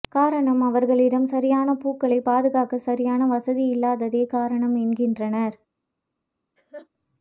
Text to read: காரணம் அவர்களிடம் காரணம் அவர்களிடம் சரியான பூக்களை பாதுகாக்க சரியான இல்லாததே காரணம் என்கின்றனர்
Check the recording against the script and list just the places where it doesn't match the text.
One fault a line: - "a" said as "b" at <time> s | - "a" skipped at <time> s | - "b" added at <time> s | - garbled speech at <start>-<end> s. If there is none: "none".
- "காரணம் அவர்களிடம்" skipped at 1.3 s
- "வசதி" added at 3.3 s